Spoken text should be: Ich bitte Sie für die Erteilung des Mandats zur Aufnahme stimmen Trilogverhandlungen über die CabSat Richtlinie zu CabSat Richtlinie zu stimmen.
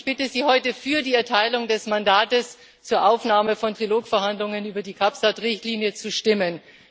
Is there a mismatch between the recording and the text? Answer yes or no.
yes